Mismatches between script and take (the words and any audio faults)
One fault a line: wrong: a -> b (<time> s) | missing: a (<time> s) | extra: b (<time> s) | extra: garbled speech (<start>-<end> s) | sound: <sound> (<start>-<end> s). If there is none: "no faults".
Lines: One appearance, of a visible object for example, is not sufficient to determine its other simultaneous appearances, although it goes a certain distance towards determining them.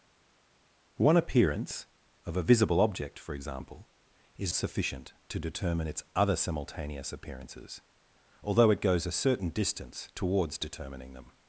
missing: not (4.5 s)